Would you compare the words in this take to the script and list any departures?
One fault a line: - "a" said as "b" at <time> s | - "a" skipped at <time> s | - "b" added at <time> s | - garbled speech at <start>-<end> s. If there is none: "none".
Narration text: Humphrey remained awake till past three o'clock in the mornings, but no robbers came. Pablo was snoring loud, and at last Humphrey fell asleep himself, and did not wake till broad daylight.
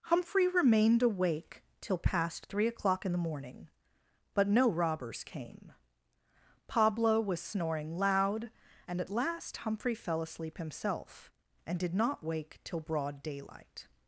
- "mornings" said as "morning" at 3.2 s